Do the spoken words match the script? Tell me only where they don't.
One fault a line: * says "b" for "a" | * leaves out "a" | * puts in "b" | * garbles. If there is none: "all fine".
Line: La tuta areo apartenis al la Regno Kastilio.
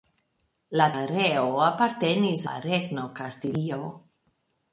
* leaves out "tuta"
* leaves out "al"